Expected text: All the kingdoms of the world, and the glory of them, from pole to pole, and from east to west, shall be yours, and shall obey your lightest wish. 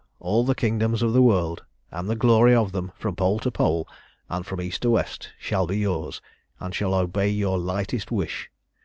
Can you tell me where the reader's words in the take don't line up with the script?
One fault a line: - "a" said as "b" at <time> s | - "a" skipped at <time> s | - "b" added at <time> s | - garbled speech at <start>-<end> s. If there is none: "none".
none